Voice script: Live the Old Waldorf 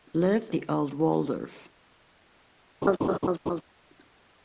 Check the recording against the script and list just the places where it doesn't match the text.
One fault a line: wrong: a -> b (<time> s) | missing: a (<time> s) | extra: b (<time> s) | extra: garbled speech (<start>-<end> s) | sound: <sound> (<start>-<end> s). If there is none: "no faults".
sound: laugh (2.8-3.6 s)